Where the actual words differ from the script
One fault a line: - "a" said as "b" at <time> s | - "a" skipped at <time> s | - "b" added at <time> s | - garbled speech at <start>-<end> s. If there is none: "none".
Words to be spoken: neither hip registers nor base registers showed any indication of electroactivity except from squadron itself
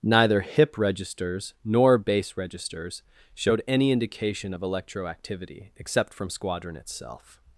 none